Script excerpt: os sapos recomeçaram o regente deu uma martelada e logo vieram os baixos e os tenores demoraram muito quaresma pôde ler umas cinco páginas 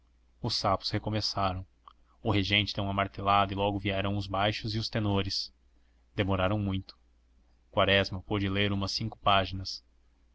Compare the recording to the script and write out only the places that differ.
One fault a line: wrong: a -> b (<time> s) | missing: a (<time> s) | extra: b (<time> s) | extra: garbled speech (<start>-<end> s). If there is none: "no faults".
no faults